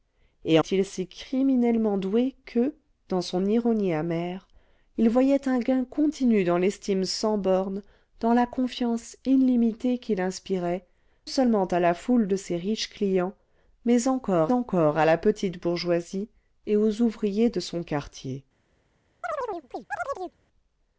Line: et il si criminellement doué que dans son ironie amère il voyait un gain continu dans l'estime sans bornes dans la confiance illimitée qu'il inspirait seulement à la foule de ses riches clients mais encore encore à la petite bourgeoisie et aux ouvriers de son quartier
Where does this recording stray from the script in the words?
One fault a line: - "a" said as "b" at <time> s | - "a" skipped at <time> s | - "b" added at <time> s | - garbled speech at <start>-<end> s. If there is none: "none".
none